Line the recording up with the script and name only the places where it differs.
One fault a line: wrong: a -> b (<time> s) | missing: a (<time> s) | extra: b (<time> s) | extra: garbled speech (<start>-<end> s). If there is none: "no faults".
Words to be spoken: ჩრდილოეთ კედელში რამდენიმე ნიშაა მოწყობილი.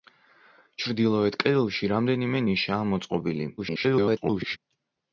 extra: garbled speech (3.6-4.6 s)